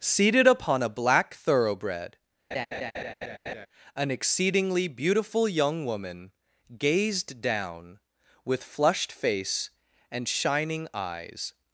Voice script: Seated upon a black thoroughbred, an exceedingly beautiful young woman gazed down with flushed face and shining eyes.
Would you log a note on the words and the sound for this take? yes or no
yes